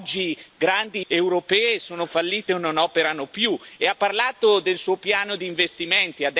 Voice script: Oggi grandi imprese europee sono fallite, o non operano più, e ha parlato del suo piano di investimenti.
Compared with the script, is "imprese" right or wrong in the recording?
wrong